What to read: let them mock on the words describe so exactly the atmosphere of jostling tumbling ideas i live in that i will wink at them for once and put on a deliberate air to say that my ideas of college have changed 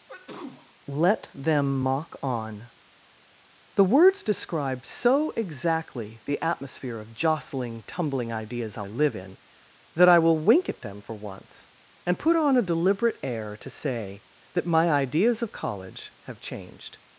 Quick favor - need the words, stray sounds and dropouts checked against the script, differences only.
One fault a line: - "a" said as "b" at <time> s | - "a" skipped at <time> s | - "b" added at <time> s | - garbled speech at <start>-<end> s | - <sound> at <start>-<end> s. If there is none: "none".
- sneeze at 0.1-0.7 s